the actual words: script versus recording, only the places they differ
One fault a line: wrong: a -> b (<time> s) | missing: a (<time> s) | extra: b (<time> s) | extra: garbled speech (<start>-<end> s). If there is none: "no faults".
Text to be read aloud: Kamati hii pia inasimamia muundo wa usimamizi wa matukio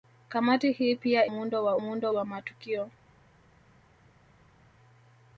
missing: inasimamia (1.2 s)
wrong: usimamizi -> muundo (1.7 s)